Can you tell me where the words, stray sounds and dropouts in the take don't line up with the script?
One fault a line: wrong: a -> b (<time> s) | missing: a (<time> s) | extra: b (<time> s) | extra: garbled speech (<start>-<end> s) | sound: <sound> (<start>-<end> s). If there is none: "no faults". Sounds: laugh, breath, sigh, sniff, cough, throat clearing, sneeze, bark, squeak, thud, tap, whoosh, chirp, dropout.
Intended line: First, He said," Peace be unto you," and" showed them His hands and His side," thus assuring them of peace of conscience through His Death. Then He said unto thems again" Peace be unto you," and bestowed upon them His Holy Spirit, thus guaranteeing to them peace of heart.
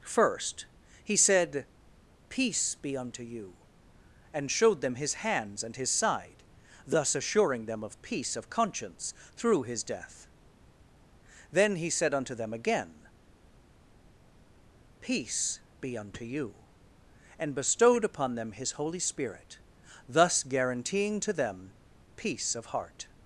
wrong: thems -> them (12.3 s)